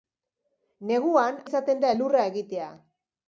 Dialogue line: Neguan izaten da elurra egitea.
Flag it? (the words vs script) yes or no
no